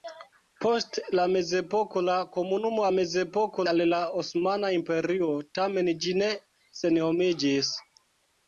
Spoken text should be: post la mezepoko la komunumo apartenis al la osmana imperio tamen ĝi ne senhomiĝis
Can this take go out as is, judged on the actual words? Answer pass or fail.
fail